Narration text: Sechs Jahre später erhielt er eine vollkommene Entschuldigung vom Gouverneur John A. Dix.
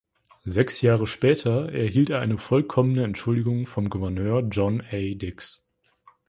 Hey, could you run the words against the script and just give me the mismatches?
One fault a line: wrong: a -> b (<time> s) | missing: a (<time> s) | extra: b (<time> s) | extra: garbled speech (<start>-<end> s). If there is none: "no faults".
no faults